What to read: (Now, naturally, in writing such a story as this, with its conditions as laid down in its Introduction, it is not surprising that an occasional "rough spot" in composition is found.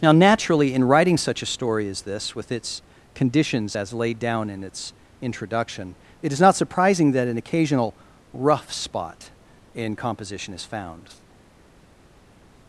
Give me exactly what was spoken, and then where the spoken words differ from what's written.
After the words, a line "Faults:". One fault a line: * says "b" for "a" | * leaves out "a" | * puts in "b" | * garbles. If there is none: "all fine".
(Now, naturally, in writing such a story as this, with its conditions as laid down in its Introduction, it is not surprising that an occasional "rough spot" in composition is found.
Faults:
all fine